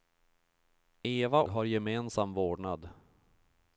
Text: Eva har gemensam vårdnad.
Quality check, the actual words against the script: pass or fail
pass